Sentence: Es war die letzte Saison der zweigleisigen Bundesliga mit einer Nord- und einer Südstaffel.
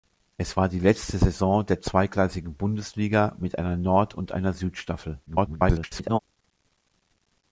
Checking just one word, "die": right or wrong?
right